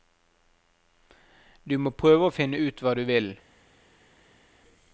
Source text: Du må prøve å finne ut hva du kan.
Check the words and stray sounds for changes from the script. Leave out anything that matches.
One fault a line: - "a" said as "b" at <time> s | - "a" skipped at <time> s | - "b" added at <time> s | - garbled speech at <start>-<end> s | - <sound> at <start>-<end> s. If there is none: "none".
- "kan" said as "vil" at 3.1 s